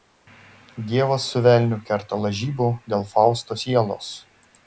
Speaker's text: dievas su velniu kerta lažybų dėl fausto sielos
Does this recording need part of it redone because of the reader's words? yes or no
no